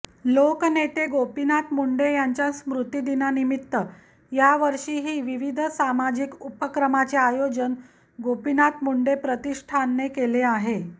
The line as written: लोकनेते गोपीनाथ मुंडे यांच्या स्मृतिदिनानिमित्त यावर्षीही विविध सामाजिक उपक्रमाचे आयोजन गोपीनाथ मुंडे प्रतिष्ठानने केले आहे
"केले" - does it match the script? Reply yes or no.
yes